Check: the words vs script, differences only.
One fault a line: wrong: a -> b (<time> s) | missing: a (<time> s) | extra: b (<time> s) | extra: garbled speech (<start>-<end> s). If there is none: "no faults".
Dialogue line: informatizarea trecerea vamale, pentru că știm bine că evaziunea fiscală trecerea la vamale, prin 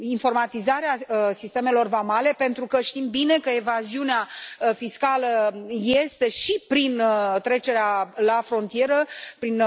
wrong: trecerea -> sistemelor (1.3 s)
extra: este și prin (5.8 s)
wrong: vamale -> frontieră (8.4 s)